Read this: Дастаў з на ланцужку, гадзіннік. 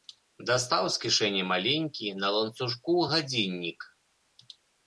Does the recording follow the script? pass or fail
fail